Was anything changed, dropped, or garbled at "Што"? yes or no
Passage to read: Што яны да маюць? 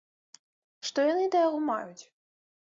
no